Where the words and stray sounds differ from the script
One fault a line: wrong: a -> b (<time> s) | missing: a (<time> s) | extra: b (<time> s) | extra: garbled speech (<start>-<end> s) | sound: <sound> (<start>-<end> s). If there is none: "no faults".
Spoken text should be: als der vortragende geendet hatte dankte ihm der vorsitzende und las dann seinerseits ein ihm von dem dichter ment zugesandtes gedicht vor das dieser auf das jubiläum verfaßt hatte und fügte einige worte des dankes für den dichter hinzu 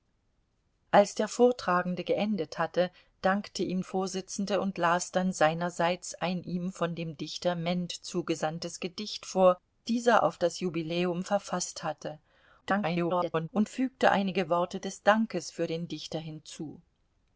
missing: der (3.8 s)
missing: das (9.6 s)
extra: garbled speech (12.6-13.5 s)